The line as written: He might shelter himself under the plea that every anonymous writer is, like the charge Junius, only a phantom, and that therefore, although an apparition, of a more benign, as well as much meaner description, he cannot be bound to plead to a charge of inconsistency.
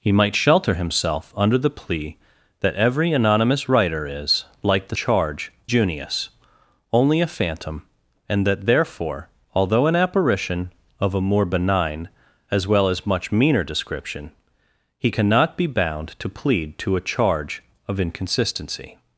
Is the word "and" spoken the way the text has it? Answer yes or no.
yes